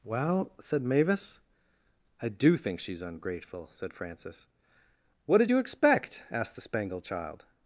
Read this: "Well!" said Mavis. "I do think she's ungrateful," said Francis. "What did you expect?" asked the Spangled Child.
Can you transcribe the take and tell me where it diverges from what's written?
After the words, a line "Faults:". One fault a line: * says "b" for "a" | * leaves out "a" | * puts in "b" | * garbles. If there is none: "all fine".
"Well!" said Mavis. "I do think she's ungrateful," said Francis. "What did you expect?" asked the Spangled Child.
Faults:
all fine